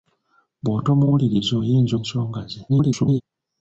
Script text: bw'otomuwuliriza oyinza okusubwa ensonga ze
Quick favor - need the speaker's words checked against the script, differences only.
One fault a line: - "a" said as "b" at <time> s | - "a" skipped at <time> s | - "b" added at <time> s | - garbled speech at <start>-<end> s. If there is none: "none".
- "okusubwa" skipped at 1.9 s
- garbled speech at 2.7-3.2 s